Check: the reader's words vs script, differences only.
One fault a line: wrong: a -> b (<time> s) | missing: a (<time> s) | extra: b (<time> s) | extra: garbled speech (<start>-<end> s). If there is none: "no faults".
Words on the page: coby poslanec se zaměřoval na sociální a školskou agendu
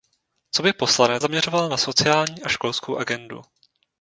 missing: se (1.2 s)